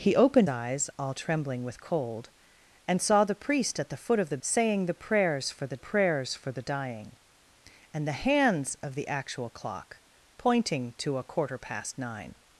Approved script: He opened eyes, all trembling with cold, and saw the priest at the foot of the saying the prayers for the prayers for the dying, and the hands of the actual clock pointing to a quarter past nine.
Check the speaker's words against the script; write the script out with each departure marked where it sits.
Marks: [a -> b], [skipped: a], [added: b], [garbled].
He opened eyes, all trembling with cold, and saw the priest at the foot of the saying the prayers for the prayers for the dying, and the hands of the actual clock pointing to a quarter past nine.